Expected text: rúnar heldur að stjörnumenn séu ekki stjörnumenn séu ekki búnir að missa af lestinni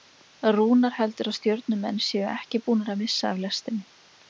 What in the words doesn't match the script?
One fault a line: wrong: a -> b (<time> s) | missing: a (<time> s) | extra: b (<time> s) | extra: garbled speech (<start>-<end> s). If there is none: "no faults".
missing: stjörnumenn séu ekki (2.6 s)